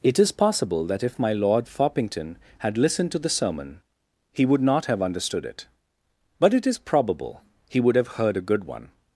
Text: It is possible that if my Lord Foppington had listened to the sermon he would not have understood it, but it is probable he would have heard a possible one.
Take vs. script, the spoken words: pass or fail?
fail